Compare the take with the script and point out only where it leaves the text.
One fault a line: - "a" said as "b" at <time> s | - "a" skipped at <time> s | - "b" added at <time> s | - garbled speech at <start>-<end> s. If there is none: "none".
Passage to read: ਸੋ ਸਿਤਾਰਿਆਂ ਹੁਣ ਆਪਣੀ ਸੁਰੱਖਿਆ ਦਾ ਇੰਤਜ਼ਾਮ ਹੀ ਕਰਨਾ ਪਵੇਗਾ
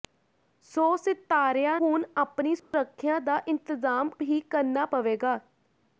none